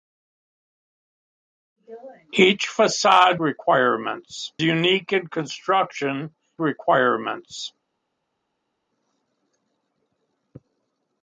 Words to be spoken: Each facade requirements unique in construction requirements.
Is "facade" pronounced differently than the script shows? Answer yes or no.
no